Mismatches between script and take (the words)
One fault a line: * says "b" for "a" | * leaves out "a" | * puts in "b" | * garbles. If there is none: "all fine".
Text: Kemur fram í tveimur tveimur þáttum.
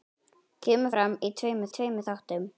all fine